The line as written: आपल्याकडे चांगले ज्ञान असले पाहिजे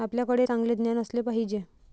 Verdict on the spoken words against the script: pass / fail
pass